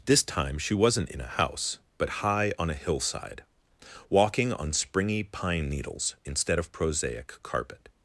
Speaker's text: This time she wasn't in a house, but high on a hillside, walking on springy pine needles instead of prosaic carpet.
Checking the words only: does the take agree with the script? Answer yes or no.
yes